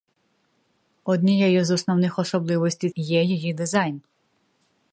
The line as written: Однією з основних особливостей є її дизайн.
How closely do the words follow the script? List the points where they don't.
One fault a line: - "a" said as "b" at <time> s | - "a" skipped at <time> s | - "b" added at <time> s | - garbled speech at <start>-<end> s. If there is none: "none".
none